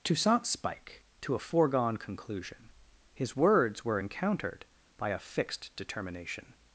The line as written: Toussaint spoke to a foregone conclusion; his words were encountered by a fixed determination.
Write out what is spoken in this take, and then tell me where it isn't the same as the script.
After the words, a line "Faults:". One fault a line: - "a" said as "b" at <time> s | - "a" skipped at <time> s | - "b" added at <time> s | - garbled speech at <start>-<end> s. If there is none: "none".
Toussaint spike to a foregone conclusion; his words were encountered by a fixed determination.
Faults:
- "spoke" said as "spike" at 0.5 s